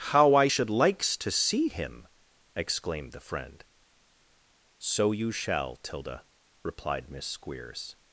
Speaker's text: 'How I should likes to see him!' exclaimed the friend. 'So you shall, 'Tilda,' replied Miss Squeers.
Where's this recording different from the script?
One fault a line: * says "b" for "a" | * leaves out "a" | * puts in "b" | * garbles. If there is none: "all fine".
all fine